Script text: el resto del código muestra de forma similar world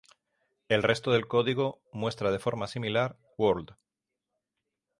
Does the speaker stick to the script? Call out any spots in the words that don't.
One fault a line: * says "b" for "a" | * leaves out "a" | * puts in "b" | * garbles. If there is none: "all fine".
all fine